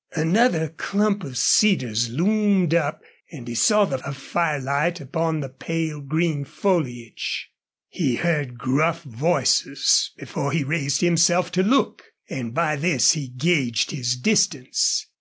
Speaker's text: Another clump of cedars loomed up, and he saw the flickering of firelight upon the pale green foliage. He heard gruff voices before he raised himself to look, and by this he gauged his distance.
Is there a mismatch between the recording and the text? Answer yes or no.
yes